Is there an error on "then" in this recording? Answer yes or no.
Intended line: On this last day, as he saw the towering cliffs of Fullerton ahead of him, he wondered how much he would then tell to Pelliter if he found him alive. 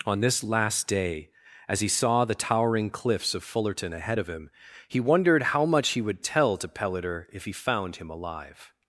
yes